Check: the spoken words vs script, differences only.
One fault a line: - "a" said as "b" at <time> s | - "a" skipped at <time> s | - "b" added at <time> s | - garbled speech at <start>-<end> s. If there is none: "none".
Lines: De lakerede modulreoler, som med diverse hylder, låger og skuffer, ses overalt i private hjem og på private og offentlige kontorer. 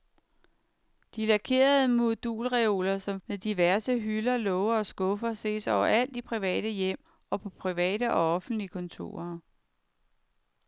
none